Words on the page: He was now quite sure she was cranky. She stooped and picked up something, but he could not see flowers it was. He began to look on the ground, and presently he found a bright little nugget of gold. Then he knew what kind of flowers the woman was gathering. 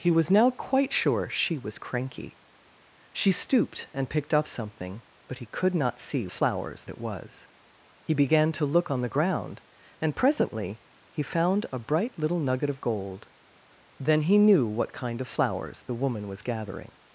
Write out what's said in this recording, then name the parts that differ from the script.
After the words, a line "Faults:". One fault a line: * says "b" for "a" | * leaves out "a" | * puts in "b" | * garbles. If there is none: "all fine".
He was now quite sure she was cranky. She stooped and picked up something, but he could not see flowers it was. He began to look on the ground, and presently he found a bright little nugget of gold. Then he knew what kind of flowers the woman was gathering.
Faults:
all fine